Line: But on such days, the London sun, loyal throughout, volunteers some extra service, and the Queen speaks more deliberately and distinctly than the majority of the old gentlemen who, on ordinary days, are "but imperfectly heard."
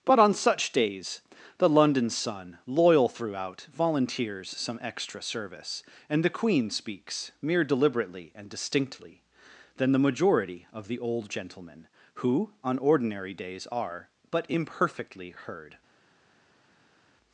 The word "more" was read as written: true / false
false